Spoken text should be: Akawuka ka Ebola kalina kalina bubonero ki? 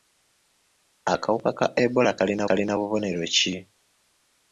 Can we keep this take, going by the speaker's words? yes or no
yes